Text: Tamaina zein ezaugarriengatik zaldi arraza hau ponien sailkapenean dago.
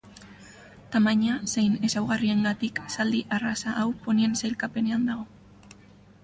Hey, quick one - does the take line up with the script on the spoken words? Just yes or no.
yes